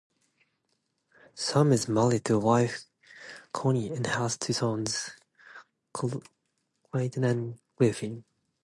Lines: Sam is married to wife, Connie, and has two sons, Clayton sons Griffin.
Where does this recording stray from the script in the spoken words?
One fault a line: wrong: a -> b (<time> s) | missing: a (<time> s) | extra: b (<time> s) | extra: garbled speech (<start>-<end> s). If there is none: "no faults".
wrong: sons -> and (7.2 s)